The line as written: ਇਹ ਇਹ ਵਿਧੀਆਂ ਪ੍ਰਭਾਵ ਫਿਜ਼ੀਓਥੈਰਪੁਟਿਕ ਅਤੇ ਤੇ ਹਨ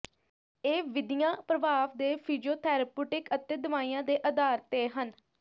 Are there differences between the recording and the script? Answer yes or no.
yes